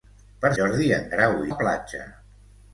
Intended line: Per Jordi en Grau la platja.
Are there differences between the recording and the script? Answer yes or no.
no